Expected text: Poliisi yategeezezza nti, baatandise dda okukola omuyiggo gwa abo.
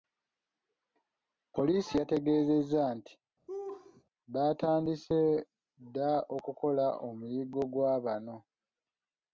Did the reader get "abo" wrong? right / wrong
wrong